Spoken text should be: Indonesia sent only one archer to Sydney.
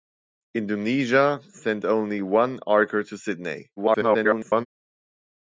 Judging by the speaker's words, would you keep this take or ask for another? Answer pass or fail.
fail